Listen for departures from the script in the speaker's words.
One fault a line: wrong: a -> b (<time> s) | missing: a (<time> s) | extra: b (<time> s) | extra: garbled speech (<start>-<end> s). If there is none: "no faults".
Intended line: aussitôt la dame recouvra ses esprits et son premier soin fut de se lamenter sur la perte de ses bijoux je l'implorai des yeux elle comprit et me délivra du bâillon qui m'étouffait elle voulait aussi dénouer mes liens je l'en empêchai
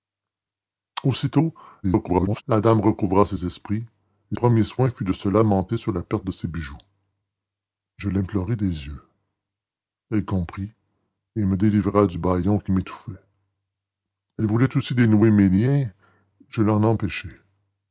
extra: garbled speech (1.8-2.4 s)
missing: son (4.4 s)